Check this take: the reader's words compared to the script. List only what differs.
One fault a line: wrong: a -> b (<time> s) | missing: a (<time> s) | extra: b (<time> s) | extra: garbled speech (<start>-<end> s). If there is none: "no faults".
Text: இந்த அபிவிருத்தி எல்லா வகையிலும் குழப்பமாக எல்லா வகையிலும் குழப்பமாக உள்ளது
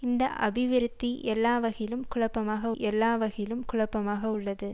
no faults